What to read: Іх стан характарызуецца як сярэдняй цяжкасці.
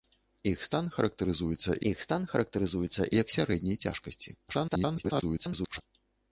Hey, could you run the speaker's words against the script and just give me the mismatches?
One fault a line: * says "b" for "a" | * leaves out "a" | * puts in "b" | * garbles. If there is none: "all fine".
* puts in "іх стан характарызуецца"
* garbles